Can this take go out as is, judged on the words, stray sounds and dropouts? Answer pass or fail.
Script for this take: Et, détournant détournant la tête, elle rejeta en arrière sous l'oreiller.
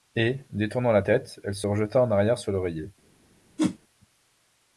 fail